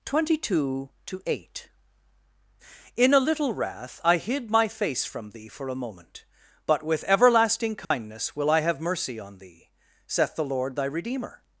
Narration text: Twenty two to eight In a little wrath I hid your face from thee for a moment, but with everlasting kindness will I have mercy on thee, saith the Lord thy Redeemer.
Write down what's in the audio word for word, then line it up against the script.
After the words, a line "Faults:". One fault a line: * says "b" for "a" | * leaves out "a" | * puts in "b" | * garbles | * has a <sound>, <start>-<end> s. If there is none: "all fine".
Twenty two to eight In a little wrath I hid my face from thee for a moment, but with everlasting kindness will I have mercy on thee, saith the Lord thy Redeemer.
Faults:
* says "my" for "your"
* has a dropout, 7.8-7.9 s